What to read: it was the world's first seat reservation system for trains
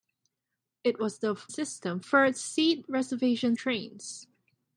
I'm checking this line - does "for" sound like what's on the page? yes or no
no